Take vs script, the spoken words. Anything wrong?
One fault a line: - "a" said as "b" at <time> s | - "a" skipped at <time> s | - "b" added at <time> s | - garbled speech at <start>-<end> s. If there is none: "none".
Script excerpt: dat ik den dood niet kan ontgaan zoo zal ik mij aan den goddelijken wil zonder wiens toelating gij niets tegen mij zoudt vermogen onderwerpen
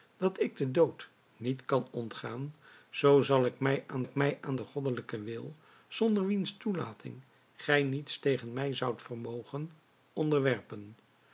- "ik mij aan" added at 4.0 s